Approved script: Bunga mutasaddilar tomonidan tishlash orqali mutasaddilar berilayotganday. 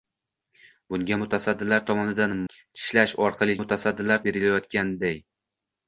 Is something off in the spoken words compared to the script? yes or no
no